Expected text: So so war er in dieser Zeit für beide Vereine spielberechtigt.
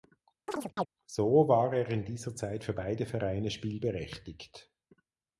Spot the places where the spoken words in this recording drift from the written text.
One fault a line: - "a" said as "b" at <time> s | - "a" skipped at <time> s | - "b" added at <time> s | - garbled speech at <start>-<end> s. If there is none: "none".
- "so" skipped at 1.5 s